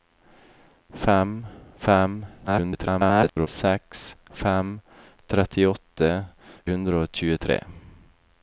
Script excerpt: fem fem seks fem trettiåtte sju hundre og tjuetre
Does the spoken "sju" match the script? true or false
false